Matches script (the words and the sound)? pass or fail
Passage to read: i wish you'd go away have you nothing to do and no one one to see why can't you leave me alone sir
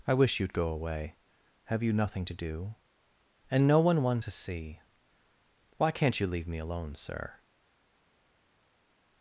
pass